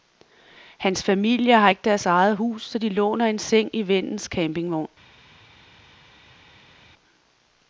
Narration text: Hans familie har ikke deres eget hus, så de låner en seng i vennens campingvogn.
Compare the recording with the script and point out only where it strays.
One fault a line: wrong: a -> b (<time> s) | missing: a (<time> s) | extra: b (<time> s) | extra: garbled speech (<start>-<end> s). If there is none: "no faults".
no faults